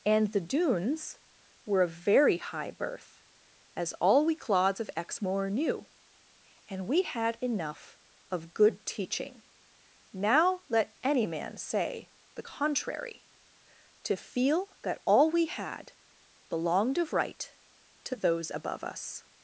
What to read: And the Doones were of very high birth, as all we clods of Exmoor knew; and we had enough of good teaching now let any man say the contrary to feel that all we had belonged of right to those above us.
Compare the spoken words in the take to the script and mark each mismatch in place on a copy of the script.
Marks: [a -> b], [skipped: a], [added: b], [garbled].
And the Doones were of very high birth, as all we clods of Exmoor knew; and we had enough of good teaching now let any man say the contrary to feel that all we had belonged of right to those above us.